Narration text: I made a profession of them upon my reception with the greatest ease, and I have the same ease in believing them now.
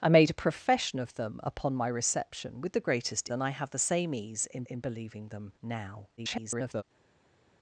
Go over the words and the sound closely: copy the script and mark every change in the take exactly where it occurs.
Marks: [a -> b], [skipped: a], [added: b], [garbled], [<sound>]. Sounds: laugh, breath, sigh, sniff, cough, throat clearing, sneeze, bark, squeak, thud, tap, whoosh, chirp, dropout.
I made a profession of them upon my reception with the greatest [skipped: ease,] and I have the same ease in [added: in] believing them now. [garbled]